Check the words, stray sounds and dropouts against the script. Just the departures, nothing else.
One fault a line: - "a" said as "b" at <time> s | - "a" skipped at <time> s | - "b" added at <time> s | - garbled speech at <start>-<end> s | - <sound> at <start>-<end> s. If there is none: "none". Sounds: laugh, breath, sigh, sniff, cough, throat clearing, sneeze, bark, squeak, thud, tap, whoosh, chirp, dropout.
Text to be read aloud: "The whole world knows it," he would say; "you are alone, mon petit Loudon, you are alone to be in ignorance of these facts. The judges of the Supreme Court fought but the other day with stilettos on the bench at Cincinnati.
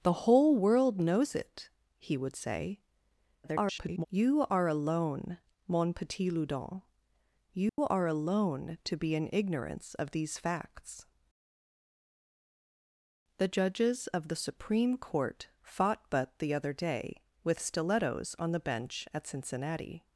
- garbled speech at 3.4-4.1 s
- dropout at 7.7-7.8 s